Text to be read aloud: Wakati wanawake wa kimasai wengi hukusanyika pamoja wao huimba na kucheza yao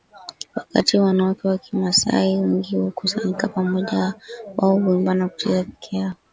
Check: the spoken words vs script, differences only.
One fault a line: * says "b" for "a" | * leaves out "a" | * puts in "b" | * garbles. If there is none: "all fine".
* puts in "peke"